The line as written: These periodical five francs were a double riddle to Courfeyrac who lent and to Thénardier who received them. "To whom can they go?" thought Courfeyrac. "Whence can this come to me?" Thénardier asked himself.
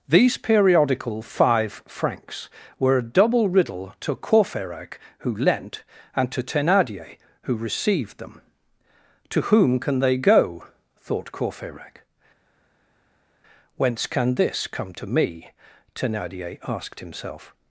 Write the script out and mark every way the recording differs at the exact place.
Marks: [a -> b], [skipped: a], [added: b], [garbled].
These periodical five francs were a double riddle to Courfeyrac who lent and to Thénardier who received them. "To whom can they go?" thought Courfeyrac. "Whence can this come to me?" Thénardier asked himself.